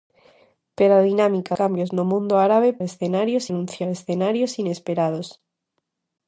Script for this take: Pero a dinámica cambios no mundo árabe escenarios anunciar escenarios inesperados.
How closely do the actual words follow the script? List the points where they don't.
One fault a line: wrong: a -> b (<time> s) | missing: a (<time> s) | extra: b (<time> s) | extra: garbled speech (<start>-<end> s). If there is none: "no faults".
no faults